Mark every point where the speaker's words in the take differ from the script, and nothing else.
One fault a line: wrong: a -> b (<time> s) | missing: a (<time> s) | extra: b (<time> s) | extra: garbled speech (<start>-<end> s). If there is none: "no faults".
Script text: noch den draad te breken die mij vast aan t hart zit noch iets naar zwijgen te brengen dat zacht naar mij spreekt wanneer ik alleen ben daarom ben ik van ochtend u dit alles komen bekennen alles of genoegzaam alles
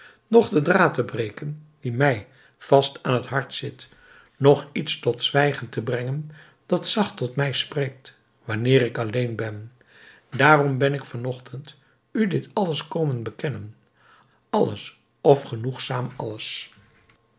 wrong: naar -> tot (5.0 s)
wrong: naar -> tot (7.2 s)